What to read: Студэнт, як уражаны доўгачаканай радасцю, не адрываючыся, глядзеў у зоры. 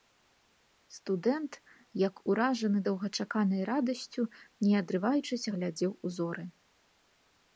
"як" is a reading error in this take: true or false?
false